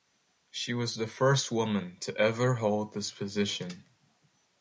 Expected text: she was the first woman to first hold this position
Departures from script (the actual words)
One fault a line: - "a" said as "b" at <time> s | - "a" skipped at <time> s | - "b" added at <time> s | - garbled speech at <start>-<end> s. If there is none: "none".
- "first" said as "ever" at 2.2 s